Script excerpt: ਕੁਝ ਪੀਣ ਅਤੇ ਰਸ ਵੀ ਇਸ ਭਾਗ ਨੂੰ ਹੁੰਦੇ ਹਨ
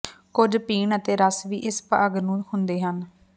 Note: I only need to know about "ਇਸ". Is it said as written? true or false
true